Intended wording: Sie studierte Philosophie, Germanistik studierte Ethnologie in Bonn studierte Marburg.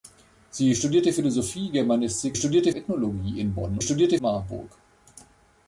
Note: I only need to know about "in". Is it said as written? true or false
true